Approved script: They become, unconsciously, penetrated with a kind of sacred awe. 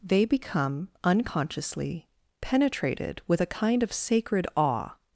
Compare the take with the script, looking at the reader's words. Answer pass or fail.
pass